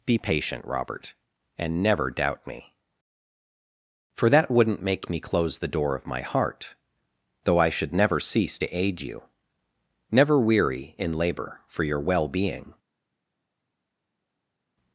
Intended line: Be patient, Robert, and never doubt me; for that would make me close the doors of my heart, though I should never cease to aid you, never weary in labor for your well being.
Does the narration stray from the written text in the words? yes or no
yes